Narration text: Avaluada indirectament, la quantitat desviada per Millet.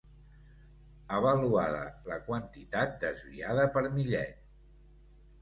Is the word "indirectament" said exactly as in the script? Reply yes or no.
no